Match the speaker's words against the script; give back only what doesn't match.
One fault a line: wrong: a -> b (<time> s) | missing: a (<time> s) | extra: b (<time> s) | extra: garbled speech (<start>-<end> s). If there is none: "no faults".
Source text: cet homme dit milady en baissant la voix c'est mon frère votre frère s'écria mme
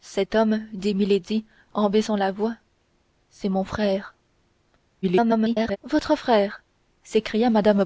extra: garbled speech (5.0-5.8 s)